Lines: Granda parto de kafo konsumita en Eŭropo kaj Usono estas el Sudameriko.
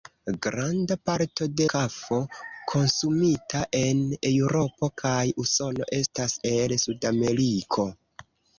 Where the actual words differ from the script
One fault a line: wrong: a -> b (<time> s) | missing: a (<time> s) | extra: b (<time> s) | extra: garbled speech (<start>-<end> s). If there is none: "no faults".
no faults